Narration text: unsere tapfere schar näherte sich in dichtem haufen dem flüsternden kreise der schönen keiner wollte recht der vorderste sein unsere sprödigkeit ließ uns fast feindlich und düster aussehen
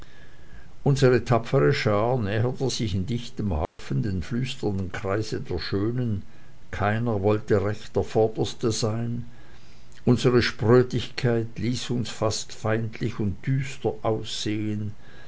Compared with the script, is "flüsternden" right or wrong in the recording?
right